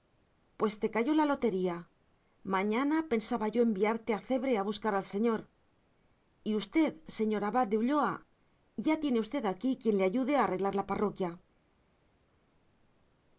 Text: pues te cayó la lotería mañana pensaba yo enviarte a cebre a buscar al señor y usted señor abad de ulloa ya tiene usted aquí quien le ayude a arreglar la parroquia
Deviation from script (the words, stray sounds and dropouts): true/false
false